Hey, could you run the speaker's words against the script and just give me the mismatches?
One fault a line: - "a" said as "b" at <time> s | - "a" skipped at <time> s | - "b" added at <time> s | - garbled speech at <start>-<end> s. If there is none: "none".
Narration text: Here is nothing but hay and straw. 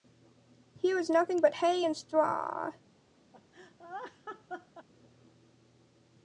none